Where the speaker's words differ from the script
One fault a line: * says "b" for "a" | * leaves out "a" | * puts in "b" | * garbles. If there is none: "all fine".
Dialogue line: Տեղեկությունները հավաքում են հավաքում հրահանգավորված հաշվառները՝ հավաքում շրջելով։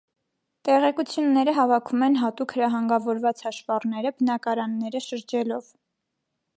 * says "հատուկ" for "հավաքում"
* says "բնակարանները" for "հավաքում"